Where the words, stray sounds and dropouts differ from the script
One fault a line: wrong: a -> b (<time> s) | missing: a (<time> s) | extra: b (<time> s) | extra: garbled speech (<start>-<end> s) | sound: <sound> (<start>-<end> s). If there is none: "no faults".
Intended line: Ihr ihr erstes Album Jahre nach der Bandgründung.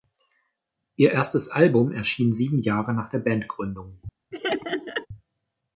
missing: ihr (1.1 s)
extra: erschien sieben (1.9 s)
sound: laugh (4.3-5.1 s)